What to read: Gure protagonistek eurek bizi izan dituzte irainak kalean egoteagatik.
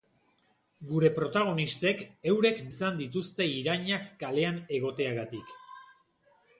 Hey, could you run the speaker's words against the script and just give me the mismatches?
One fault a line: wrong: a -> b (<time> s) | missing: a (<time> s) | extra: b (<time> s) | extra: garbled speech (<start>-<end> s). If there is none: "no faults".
missing: bizi (2.6 s)